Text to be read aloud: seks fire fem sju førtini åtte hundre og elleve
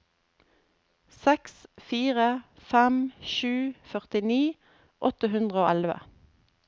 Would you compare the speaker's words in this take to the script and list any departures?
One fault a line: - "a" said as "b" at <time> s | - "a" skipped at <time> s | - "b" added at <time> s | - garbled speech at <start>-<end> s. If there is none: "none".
none